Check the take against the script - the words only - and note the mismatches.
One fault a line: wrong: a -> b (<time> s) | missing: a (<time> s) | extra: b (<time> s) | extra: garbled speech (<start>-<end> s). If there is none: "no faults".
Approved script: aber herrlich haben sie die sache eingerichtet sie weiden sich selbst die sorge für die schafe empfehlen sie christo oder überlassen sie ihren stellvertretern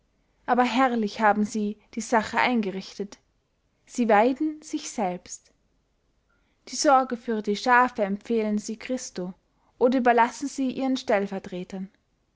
no faults